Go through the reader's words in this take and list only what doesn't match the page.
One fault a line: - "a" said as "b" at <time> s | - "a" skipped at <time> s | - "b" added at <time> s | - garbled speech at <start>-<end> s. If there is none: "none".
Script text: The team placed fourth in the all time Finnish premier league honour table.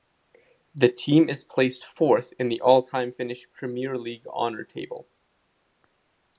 - "is" added at 1.3 s